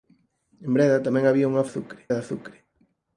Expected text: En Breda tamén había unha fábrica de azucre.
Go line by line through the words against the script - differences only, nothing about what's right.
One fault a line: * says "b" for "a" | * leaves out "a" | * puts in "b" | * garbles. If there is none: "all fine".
* says "azucre" for "fábrica"